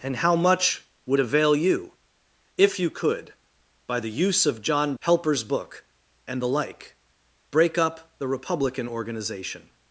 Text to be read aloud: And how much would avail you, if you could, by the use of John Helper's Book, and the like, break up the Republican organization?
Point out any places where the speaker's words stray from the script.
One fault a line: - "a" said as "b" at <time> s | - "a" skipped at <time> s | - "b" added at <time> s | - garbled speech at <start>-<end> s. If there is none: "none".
none